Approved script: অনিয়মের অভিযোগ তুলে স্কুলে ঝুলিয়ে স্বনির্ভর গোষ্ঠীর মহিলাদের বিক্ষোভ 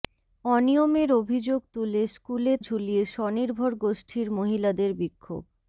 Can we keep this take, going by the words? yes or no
yes